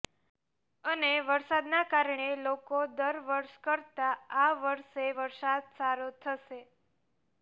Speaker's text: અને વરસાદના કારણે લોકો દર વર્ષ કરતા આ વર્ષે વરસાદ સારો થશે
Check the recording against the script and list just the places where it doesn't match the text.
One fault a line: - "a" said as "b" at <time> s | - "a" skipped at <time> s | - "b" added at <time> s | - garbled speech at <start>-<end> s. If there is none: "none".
none